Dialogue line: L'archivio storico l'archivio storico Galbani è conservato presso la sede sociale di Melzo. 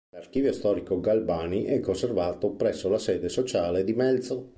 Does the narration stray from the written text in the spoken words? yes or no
yes